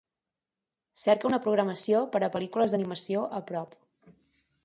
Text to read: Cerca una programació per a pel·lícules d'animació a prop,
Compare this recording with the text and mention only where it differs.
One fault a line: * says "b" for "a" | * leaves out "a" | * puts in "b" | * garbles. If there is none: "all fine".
all fine